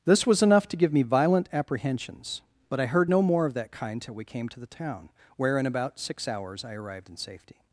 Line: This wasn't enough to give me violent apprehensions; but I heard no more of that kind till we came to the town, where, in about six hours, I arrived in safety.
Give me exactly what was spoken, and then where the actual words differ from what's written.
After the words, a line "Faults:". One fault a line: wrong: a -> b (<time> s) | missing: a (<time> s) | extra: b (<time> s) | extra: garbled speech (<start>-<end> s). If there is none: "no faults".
This was enough to give me violent apprehensions; but I heard no more of that kind till we came to the town, where, in about six hours, I arrived in safety.
Faults:
wrong: wasn't -> was (0.2 s)